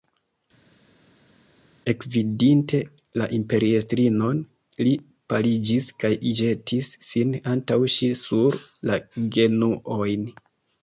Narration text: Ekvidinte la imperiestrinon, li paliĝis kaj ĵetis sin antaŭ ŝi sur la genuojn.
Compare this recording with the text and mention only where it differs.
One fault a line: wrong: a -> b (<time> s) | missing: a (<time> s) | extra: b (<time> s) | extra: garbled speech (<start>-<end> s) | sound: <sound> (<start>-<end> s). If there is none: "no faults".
no faults